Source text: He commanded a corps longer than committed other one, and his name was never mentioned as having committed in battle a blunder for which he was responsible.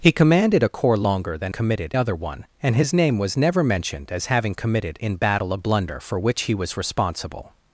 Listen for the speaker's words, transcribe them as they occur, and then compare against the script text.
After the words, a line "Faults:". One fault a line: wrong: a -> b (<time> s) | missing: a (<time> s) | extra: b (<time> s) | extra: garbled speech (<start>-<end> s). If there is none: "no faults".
He commanded a corps longer than committed other one, and his name was never mentioned as having committed in battle a blunder for which he was responsible.
Faults:
no faults